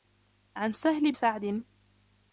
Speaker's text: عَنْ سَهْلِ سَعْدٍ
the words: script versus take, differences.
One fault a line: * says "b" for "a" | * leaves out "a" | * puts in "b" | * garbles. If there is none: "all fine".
all fine